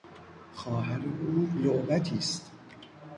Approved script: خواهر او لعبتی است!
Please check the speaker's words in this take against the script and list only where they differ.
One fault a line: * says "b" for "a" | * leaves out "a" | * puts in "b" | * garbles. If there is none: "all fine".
all fine